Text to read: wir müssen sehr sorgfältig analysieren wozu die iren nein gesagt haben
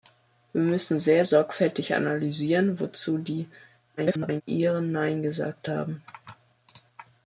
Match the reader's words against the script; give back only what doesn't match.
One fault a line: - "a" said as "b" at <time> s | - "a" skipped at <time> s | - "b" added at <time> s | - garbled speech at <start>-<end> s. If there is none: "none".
- garbled speech at 4.0-4.4 s